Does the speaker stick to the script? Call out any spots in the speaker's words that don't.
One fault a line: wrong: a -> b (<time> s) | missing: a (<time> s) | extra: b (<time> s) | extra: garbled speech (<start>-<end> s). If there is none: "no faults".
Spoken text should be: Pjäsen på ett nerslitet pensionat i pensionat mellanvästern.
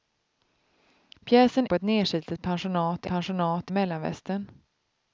no faults